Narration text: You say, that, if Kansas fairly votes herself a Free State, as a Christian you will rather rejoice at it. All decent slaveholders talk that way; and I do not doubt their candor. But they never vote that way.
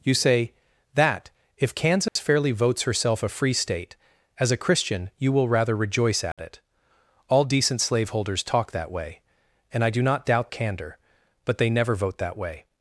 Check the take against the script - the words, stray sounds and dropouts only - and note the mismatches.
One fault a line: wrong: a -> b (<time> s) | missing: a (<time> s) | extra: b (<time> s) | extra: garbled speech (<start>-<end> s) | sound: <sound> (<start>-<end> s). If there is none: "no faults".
sound: dropout (2.1-2.2 s)
sound: dropout (6.3-6.4 s)
missing: their (10.5 s)